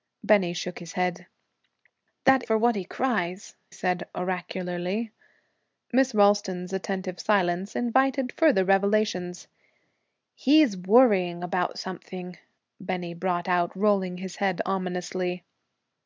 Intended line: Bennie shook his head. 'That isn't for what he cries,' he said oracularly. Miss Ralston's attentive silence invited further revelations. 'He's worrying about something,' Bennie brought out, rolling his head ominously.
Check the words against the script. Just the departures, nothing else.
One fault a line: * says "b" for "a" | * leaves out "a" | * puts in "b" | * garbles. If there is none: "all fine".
* leaves out "isn't"
* leaves out "he"